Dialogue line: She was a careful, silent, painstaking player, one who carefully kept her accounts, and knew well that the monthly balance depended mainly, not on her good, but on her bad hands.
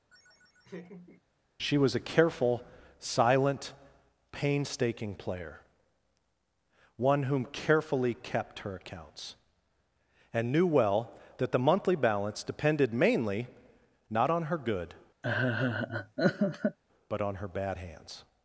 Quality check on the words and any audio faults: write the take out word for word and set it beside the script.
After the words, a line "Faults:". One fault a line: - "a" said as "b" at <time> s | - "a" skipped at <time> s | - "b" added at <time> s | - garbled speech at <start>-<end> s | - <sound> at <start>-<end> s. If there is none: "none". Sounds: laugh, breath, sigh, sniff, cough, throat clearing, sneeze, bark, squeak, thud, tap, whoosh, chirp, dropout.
She was a careful, silent, painstaking player, one whom carefully kept her accounts, and knew well that the monthly balance depended mainly, not on her good, but on her bad hands.
Faults:
- laugh at 0.1-1.2 s
- "who" said as "whom" at 7.2 s
- laugh at 15.2-16.8 s